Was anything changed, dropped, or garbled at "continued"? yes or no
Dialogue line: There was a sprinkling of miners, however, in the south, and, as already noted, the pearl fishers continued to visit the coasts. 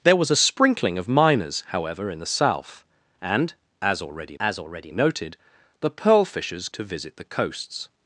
yes